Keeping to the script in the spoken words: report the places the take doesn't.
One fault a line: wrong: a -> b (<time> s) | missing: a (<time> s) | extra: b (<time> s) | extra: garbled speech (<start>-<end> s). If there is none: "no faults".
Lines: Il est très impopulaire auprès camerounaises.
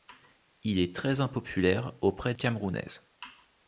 no faults